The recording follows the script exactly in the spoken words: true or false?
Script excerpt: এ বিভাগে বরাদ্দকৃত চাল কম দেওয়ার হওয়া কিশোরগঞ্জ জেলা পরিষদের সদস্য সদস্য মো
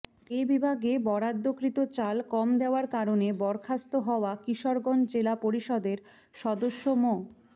false